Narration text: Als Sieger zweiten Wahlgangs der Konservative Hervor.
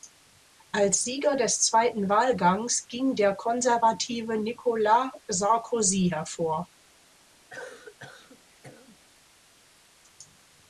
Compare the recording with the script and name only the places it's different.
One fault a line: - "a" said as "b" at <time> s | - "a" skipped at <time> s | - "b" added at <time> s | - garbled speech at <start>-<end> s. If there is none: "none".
- "des" added at 1.4 s
- "ging" added at 2.9 s
- "Nicolas Sarkozy" added at 4.4 s